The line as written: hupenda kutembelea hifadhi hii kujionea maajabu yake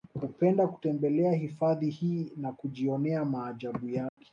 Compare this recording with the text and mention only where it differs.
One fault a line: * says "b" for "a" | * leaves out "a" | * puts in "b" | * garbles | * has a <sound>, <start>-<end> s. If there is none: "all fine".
* puts in "na"
* has a dropout, 4.1-4.2 s